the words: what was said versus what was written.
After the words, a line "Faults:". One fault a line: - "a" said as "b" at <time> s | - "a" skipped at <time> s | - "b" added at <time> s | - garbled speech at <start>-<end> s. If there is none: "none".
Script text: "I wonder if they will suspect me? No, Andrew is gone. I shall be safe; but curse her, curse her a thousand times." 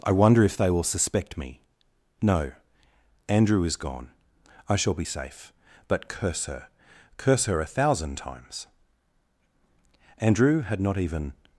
"I wonder if they will suspect me? No, Andrew is gone. I shall be safe; but curse her, curse her a thousand times." Andrew had not even
Faults:
- "Andrew had not even" added at 10.2 s